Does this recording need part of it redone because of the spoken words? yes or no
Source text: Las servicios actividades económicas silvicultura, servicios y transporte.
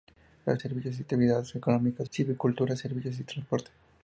no